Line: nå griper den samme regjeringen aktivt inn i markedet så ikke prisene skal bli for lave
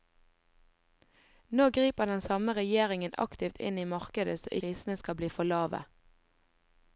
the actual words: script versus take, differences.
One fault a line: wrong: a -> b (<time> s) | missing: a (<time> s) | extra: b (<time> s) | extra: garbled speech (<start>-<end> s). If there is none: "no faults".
missing: ikke (4.5 s)